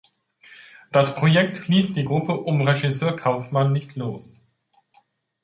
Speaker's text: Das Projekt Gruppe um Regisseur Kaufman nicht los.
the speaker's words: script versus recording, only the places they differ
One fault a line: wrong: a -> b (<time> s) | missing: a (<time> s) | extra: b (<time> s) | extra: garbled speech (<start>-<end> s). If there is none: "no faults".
extra: ließ die (1.7 s)